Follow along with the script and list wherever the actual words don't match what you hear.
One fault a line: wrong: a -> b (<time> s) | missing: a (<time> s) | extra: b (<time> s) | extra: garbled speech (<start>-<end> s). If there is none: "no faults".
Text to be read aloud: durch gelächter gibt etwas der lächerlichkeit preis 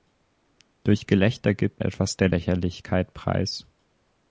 no faults